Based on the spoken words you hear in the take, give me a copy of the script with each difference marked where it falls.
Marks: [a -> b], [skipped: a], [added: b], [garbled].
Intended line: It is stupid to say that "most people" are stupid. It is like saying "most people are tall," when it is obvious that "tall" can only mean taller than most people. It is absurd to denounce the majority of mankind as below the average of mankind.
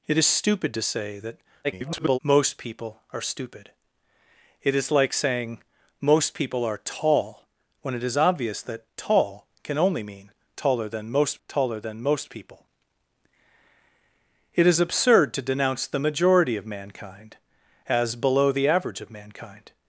It is stupid to say that [garbled] "most people" are stupid. It is like saying "most people are tall," when it is obvious that "tall" can only mean taller than most [added: taller than most] people. It is absurd to denounce the majority of mankind as below the average of mankind.